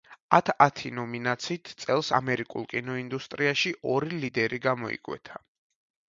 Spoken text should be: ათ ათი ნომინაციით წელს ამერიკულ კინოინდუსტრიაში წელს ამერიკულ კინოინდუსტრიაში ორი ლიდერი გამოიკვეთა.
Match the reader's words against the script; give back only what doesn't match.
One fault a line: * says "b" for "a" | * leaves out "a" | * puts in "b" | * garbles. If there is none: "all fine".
* leaves out "წელს ამერიკულ კინოინდუსტრიაში"